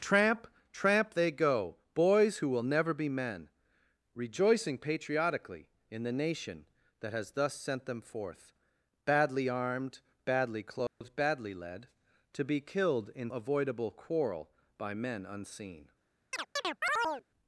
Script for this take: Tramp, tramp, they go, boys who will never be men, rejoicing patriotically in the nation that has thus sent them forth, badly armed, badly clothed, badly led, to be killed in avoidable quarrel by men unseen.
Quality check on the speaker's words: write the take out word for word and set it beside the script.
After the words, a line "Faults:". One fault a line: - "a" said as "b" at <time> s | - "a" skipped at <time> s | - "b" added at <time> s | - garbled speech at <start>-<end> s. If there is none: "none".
Tramp, tramp, they go, boys who will never be men, rejoicing patriotically in the nation that has thus sent them forth, badly armed, badly clothed, badly led, to be killed in avoidable quarrel by men unseen.
Faults:
none